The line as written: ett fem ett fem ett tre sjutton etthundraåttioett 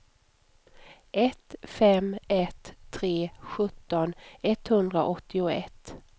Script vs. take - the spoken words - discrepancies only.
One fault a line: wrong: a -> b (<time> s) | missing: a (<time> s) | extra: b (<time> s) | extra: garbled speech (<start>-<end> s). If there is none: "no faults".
missing: fem ett (2.7 s)